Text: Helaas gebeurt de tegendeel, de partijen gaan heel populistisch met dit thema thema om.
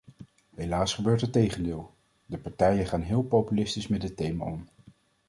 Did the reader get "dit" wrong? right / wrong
right